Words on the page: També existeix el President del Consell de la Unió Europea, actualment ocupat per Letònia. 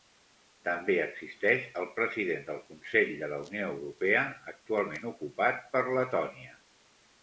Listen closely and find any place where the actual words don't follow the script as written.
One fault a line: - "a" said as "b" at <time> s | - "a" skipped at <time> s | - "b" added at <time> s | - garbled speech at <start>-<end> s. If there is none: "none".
none